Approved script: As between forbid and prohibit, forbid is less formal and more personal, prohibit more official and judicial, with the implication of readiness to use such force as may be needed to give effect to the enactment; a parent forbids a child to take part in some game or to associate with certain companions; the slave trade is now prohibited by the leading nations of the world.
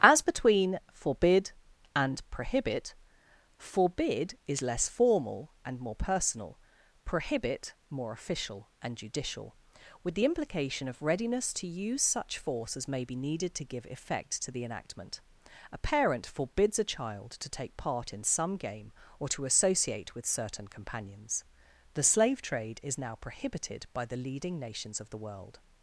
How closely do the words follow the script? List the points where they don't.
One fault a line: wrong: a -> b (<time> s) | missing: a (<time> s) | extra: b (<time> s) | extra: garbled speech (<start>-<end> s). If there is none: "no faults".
no faults